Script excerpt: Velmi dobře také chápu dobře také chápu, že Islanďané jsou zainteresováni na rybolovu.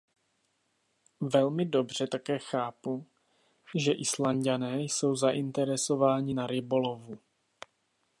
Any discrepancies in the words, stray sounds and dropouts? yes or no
yes